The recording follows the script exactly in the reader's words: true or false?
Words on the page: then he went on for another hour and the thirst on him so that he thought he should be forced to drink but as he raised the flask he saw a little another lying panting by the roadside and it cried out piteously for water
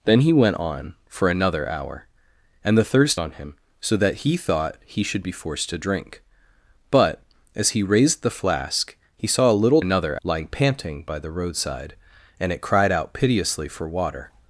true